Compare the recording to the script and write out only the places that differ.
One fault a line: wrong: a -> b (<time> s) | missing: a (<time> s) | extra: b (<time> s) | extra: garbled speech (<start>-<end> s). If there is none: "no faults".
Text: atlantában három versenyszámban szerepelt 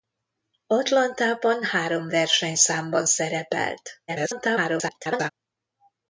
extra: garbled speech (4.1-5.3 s)